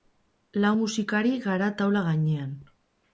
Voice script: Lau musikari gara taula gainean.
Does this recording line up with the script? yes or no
yes